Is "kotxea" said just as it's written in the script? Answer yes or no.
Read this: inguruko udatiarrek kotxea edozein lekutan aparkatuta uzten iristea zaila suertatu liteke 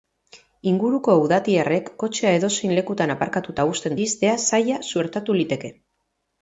yes